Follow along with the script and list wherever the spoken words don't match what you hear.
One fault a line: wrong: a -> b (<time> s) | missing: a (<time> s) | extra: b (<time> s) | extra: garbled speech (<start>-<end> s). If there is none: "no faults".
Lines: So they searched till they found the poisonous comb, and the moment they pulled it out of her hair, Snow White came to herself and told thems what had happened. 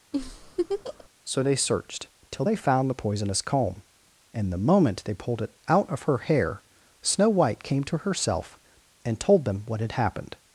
wrong: thems -> them (9.4 s)